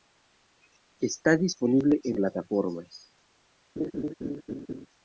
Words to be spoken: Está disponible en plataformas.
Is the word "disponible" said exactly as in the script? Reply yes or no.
yes